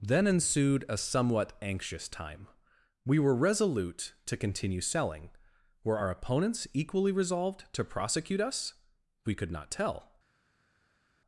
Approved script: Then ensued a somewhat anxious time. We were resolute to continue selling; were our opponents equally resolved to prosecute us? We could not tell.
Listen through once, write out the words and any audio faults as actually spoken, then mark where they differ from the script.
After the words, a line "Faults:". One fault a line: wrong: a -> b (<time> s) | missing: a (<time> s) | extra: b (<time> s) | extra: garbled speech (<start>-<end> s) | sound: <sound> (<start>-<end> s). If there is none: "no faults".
Then ensued a somewhat anxious time. We were resolute to continue selling; were our opponents equally resolved to prosecute us? We could not tell.
Faults:
no faults